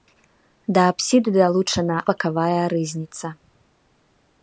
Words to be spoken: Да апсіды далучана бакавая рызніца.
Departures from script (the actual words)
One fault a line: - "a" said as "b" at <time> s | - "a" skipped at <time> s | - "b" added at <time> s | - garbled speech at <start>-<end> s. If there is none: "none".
none